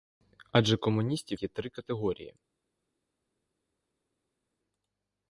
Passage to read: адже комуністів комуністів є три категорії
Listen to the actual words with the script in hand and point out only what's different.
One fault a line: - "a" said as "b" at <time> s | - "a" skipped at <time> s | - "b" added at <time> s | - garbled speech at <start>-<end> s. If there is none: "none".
- "комуністів" skipped at 1.4 s